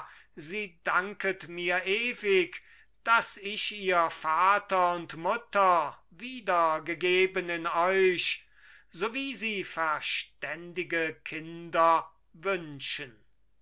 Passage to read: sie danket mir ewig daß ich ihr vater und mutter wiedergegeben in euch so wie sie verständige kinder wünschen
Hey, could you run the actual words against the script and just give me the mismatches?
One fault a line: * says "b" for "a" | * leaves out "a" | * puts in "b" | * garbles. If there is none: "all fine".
all fine